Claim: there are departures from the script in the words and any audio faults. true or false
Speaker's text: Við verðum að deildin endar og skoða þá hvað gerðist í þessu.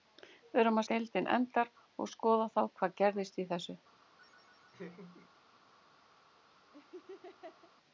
true